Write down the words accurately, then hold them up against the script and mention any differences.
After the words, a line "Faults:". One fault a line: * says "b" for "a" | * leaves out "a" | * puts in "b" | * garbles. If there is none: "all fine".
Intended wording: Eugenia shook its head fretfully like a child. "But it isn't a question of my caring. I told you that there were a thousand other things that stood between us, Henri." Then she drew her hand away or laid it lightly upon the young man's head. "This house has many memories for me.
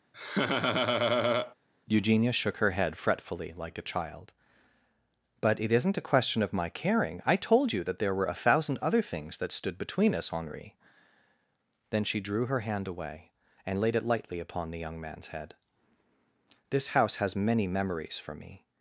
Eugenia shook her head fretfully like a child. "But it isn't a question of my caring. I told you that there were a thousand other things that stood between us, Henri." Then she drew her hand away and laid it lightly upon the young man's head. "This house has many memories for me.
Faults:
* says "her" for "its"
* says "and" for "or"